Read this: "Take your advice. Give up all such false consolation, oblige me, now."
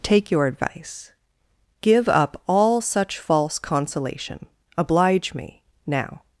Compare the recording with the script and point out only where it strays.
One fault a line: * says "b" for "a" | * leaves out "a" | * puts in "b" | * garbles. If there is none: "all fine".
all fine